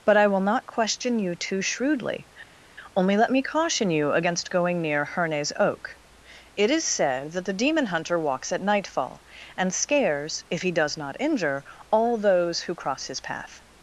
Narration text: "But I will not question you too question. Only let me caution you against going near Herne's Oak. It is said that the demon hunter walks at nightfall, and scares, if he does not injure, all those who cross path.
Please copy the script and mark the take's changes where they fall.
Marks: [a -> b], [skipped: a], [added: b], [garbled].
"But I will not question you too [question. -> shrewdly] Only let me caution you against going near Herne's Oak. It is said that the demon hunter walks at nightfall, and scares, if he does not injure, all those who cross [added: his] path.